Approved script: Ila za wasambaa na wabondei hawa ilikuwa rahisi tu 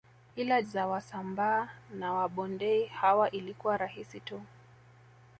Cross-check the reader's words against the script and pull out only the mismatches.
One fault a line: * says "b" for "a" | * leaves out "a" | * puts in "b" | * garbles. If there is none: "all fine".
all fine